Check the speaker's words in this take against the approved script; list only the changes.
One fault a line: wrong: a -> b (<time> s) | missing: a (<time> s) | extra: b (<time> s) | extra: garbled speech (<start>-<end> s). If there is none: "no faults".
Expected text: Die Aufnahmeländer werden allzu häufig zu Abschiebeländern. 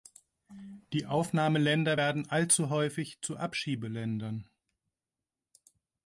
no faults